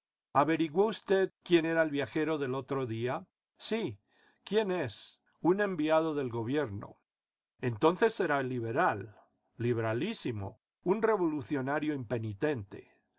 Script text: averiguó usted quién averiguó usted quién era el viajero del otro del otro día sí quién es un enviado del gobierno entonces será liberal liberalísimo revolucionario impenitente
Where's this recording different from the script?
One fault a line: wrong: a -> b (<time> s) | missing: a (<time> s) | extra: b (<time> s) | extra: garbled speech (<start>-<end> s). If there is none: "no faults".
missing: averiguó usted quién (1.7 s)
missing: del otro (2.9 s)
extra: un (10.8 s)